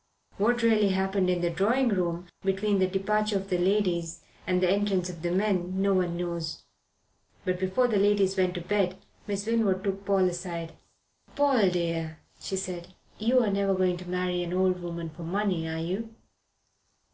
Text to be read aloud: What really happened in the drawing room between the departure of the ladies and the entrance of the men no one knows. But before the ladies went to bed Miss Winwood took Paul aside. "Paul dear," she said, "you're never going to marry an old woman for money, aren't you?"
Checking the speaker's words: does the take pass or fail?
fail